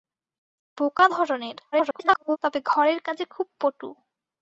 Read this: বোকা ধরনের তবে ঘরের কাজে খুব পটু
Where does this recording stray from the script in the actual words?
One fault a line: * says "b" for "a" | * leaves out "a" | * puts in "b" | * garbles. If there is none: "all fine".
* garbles